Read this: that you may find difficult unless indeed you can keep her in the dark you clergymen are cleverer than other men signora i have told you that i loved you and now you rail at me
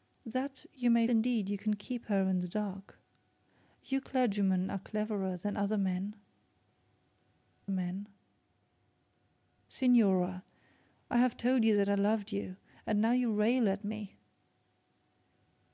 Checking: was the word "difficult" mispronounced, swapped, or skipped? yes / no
yes